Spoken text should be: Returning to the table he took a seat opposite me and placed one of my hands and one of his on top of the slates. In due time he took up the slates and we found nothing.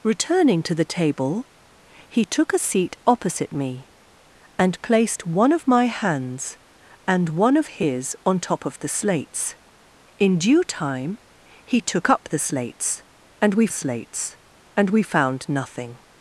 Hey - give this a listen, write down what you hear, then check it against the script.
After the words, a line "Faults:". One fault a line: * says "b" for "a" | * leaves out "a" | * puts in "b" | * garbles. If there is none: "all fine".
Returning to the table he took a seat opposite me and placed one of my hands and one of his on top of the slates. In due time he took up the slates and we slates and we found nothing.
Faults:
* puts in "slates and we"